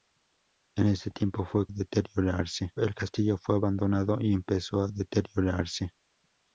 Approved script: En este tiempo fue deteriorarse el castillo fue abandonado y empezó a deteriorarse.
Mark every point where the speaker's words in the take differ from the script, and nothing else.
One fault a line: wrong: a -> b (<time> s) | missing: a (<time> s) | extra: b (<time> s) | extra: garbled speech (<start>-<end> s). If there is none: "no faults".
no faults